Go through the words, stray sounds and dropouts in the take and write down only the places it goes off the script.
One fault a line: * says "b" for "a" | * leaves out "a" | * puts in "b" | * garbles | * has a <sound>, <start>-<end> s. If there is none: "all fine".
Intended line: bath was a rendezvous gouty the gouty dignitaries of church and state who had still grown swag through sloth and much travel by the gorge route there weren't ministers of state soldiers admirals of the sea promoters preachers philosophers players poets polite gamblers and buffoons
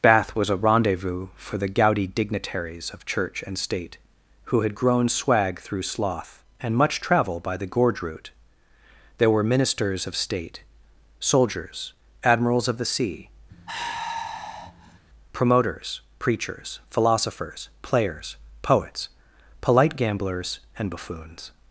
* says "for" for "gouty"
* leaves out "still"
* says "were" for "weren't"
* has a sigh, 13.5-15.0 s